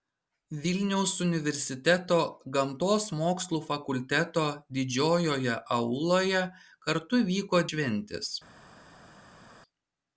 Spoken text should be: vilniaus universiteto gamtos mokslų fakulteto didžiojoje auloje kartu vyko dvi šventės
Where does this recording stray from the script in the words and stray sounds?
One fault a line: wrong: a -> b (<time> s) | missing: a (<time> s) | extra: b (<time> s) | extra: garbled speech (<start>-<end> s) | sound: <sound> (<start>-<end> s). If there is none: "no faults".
missing: dvi (7.7 s)